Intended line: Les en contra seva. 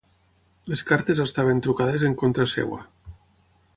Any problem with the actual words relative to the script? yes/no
yes